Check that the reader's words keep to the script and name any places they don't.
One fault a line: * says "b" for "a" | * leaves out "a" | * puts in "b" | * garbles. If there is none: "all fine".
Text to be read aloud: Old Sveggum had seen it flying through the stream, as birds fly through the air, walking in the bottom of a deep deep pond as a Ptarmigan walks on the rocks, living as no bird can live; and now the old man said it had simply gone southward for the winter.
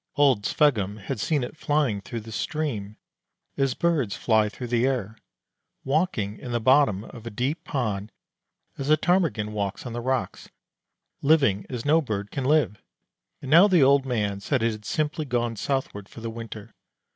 * leaves out "deep"